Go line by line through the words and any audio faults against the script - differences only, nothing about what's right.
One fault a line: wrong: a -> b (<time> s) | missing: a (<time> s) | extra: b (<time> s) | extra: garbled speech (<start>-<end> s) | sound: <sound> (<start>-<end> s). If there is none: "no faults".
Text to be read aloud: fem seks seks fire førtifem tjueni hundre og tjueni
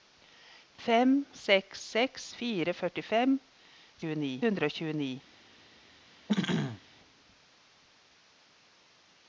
sound: throat clearing (6.3-6.8 s)